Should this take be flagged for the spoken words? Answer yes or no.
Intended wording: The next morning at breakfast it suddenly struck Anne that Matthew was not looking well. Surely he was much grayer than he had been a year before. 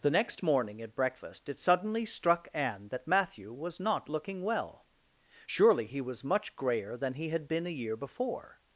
no